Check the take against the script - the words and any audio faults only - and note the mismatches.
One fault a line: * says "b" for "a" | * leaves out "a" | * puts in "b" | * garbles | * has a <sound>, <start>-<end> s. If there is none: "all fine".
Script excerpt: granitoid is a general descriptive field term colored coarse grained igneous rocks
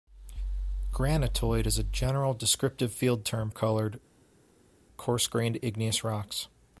all fine